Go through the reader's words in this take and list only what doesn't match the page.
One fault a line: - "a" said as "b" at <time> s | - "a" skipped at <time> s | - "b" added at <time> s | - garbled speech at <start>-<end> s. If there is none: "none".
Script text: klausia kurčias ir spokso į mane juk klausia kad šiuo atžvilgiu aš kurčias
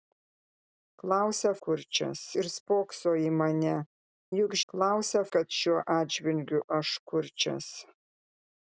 none